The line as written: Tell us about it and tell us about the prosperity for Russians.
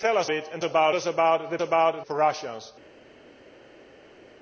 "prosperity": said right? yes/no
no